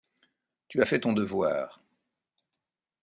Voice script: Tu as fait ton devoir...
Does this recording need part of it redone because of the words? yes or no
no